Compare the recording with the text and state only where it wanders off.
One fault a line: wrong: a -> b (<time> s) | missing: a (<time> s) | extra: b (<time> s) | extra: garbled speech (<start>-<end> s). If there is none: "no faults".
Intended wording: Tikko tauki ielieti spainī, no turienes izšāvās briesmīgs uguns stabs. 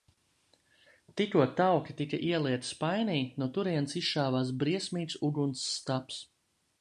extra: tika (2.0 s)